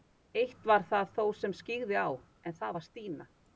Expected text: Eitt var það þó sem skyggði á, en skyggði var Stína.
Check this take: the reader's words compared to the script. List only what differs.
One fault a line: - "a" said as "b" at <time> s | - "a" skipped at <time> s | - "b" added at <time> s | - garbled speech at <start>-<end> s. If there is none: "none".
- "skyggði" said as "það" at 2.6 s